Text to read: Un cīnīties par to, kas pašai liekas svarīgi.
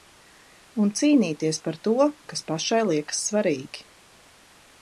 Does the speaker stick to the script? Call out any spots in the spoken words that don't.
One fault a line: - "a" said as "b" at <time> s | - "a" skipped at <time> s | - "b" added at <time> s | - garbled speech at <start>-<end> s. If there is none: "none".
none